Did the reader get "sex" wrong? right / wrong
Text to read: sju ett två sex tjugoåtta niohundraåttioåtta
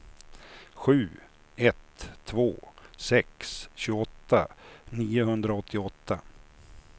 right